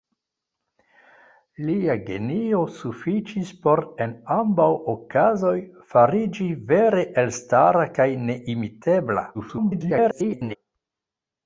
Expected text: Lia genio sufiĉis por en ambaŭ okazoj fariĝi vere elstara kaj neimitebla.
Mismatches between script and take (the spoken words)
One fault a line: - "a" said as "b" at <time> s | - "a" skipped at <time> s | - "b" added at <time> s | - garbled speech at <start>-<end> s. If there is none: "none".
- garbled speech at 9.3-10.6 s